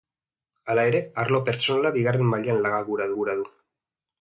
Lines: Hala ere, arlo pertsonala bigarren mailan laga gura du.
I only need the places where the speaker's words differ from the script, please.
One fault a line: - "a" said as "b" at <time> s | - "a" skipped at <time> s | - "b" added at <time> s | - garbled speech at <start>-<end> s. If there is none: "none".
- "gura" added at 3.2 s